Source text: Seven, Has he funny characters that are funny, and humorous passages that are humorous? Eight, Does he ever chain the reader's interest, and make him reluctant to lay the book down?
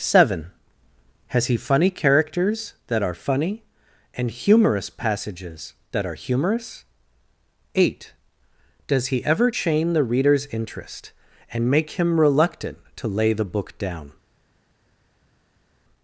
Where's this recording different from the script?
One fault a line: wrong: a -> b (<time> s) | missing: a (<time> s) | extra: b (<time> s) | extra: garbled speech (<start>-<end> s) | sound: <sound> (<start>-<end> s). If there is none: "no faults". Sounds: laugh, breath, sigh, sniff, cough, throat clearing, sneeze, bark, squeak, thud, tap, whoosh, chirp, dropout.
no faults